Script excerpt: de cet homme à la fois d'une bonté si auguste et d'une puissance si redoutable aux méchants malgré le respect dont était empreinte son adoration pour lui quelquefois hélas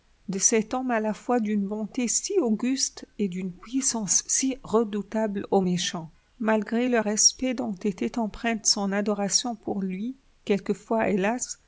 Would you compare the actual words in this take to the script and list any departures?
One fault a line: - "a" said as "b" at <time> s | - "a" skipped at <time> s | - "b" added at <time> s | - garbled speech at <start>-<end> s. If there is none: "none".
none